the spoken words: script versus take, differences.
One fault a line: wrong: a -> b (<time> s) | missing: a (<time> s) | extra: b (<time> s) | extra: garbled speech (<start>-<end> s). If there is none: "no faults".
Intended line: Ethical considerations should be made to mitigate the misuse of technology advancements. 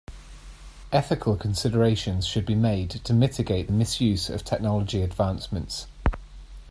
no faults